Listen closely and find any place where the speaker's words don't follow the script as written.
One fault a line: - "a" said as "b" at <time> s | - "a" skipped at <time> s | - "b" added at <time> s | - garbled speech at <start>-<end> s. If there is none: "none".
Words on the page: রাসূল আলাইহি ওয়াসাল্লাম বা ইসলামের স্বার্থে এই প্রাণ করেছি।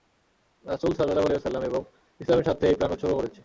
- "সাল্লাল্লাহু" added at 0.9 s
- "বা" said as "এবং" at 1.7 s
- "উৎসর্গ" added at 2.9 s